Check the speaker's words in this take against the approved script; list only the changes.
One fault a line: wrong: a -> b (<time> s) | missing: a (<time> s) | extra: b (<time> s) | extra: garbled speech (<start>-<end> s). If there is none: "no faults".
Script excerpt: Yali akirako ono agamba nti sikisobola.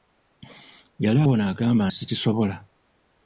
missing: akirako (1.2 s)
missing: nti (1.8 s)